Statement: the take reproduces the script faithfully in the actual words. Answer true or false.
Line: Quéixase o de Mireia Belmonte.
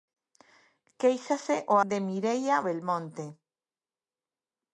true